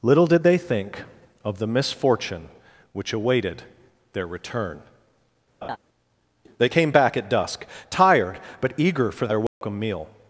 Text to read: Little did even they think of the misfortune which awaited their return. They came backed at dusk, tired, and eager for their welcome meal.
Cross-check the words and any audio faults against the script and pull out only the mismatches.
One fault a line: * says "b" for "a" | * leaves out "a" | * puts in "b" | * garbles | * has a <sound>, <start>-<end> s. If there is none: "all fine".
* leaves out "even"
* has a laugh, 5.6-5.8 s
* says "back" for "backed"
* says "but" for "and"
* has a dropout, 9.5-9.6 s